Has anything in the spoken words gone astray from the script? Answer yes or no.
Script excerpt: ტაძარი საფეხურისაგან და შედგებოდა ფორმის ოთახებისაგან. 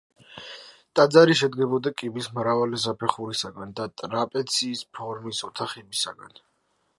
yes